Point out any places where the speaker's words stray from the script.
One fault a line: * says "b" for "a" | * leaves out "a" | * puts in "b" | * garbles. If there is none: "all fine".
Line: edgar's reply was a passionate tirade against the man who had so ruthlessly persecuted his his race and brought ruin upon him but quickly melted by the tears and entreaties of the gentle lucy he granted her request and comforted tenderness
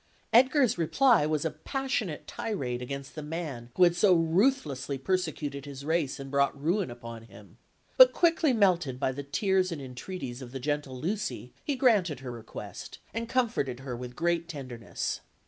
* leaves out "his"
* puts in "her with great"